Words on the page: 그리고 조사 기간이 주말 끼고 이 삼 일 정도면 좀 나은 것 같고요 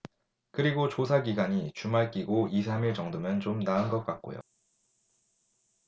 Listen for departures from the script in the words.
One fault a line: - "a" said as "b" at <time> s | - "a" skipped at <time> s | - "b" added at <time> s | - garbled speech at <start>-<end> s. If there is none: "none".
none